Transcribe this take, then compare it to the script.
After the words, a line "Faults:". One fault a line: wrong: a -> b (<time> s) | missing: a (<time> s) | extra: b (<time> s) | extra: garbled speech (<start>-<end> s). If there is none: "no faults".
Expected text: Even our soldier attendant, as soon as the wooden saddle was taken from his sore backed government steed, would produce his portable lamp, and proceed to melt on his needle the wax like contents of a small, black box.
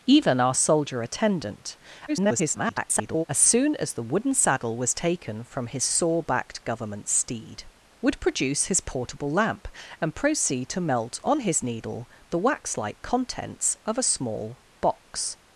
Even our soldier attendant, [garbled] as soon as the wooden saddle was taken from his sore backed government steed, would produce his portable lamp, and proceed to melt on his needle the wax like contents of a small, box.
Faults:
extra: garbled speech (2.1-3.2 s)
missing: black (14.6 s)